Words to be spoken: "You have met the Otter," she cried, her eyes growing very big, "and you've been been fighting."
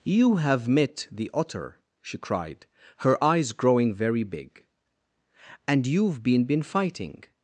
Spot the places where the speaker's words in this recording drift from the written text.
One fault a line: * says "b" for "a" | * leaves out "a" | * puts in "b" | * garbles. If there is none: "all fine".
all fine